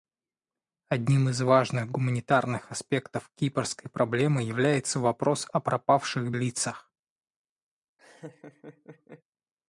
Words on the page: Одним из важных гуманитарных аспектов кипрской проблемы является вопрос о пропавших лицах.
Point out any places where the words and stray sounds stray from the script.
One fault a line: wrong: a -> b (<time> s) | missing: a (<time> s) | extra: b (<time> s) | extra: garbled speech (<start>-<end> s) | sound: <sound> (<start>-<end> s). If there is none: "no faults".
sound: laugh (8.0-9.2 s)